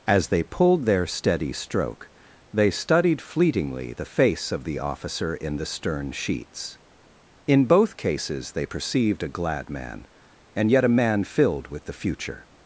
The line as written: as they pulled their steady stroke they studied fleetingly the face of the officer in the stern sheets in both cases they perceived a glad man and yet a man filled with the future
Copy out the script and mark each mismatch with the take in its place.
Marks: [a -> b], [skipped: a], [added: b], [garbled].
as they pulled their steady stroke they studied fleetingly the face of the officer in the stern sheets in both cases they perceived a glad man and yet a man filled with the future